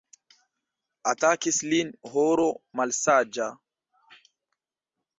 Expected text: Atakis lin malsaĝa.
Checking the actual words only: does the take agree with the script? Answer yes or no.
no